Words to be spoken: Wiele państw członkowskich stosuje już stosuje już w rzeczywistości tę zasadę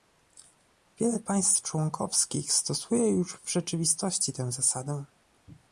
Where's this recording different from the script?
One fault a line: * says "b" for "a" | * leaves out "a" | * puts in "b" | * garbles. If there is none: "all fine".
* leaves out "stosuje już"